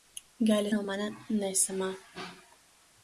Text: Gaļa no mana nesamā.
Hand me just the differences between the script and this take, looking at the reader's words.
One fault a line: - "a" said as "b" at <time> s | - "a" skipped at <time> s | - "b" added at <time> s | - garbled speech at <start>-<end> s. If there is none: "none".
none